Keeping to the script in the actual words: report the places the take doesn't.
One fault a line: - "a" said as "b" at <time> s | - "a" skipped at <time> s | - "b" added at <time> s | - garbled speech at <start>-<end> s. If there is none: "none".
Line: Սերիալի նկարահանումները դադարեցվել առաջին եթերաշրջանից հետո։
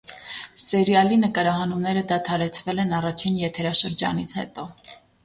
- "են" added at 2.9 s